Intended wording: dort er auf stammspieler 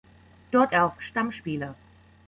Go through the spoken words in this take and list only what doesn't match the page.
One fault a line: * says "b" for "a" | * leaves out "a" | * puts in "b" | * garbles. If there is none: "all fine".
all fine